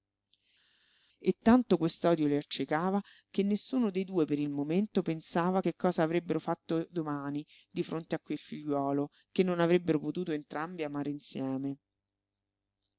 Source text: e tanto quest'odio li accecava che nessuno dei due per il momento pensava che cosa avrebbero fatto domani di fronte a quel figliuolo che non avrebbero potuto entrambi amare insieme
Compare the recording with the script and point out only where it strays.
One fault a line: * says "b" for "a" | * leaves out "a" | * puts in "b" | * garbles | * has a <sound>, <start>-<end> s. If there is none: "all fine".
all fine